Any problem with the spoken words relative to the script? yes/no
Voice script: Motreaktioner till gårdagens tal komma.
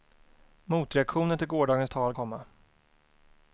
no